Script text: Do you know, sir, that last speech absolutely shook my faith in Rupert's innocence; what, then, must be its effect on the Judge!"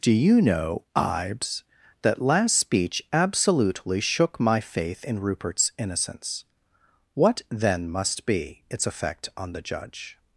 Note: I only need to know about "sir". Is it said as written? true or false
false